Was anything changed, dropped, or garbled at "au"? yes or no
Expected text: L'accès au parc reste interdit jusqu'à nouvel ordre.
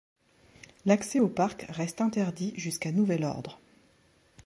no